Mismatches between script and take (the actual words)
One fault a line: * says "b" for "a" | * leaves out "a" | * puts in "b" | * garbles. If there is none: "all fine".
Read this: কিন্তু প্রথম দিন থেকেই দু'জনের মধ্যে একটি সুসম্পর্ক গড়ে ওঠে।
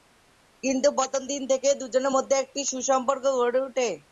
all fine